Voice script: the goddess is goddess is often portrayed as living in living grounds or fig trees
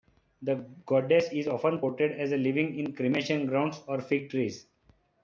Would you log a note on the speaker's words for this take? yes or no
yes